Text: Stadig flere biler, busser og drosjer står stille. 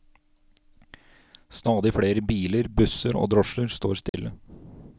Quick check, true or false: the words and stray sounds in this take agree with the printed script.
false